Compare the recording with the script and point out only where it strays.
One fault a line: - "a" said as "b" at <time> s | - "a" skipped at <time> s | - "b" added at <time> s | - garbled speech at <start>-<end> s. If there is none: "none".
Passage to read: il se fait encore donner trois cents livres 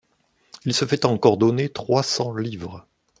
none